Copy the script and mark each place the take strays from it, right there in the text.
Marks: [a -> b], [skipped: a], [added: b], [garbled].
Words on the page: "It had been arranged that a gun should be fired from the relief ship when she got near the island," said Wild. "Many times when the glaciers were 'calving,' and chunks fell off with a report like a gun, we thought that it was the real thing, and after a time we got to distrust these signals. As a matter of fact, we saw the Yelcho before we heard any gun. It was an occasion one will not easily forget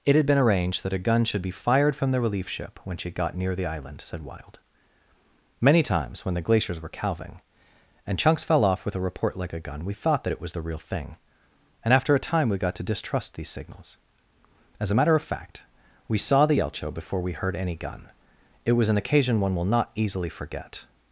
"It had been arranged that a gun should be fired from the relief ship when she got near the island," said Wild. "Many times when the glaciers were 'calving,' and chunks fell off with a report like a gun, we thought that it was the real thing, and after a time we got to distrust these signals. As a matter of fact, we saw the Yelcho before we heard any gun. It was an occasion one will not easily forget